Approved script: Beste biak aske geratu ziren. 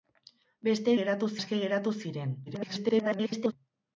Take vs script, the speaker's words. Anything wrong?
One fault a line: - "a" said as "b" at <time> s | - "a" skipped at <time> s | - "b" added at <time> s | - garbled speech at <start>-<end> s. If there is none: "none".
- "biak" said as "geratu" at 1.0 s
- garbled speech at 2.5-3.5 s